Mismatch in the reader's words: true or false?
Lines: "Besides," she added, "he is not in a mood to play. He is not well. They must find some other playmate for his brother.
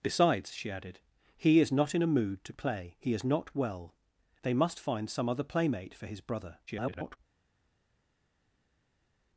true